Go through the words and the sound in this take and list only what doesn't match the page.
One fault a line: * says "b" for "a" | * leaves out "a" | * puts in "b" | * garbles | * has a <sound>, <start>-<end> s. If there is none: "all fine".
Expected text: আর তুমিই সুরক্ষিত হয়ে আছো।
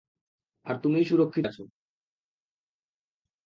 * leaves out "হয়ে"